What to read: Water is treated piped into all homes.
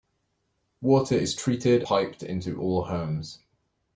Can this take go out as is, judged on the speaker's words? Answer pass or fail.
pass